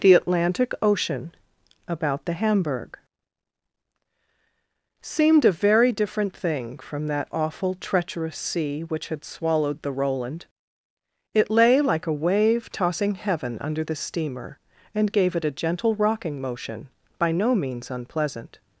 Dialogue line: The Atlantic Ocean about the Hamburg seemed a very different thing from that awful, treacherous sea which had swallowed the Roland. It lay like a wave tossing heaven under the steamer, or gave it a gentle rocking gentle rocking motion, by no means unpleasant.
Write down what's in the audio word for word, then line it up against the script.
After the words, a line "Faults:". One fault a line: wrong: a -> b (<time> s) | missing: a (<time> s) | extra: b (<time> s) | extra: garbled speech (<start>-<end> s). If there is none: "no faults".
The Atlantic Ocean about the Hamburg seemed a very different thing from that awful, treacherous sea which had swallowed the Roland. It lay like a wave tossing heaven under the steamer, and gave it a gentle rocking motion, by no means unpleasant.
Faults:
wrong: or -> and (14.9 s)
missing: gentle rocking (16.4 s)